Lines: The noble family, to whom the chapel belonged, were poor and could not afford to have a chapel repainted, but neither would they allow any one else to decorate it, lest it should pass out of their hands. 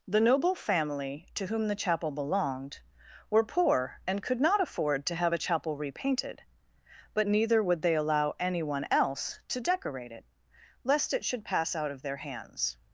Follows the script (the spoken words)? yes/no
yes